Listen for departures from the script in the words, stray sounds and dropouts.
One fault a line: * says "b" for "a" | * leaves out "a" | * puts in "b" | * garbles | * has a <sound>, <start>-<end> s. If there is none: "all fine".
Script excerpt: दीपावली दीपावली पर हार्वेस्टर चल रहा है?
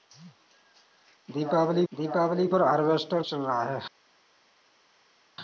all fine